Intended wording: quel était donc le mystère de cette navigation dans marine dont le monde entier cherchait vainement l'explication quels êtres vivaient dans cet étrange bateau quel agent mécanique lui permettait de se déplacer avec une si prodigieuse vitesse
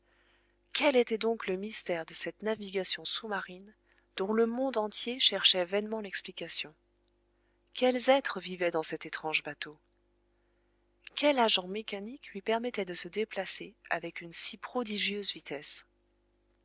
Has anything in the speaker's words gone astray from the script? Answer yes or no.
yes